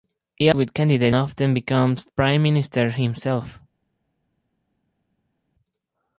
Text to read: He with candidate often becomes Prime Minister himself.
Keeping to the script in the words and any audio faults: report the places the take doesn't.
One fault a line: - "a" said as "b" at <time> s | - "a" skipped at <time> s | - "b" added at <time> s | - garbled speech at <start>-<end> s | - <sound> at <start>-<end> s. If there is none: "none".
none